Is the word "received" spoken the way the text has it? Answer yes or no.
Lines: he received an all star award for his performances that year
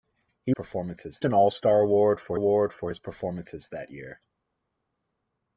no